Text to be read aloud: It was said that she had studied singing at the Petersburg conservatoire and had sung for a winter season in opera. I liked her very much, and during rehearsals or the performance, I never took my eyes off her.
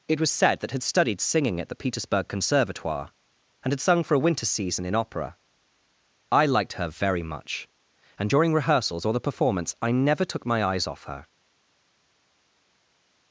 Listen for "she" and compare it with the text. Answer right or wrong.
wrong